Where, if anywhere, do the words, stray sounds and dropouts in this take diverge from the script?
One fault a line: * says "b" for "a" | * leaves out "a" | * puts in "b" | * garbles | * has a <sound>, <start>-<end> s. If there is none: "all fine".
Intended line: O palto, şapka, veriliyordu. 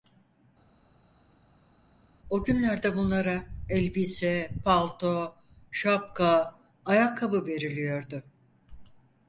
* puts in "günlerde bunlara elbise"
* puts in "ayakkabı"